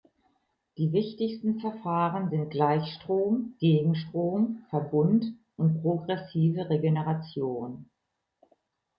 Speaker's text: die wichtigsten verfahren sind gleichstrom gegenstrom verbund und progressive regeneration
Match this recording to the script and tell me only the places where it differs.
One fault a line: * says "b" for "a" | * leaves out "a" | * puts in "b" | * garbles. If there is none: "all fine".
all fine